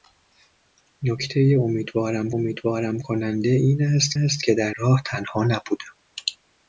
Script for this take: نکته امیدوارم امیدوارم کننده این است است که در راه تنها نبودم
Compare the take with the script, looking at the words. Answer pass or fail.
pass